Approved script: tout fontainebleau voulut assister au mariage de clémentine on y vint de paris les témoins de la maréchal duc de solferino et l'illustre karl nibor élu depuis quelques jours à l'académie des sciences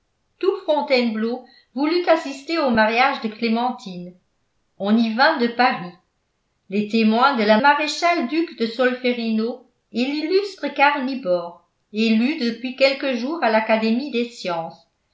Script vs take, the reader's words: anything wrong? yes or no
no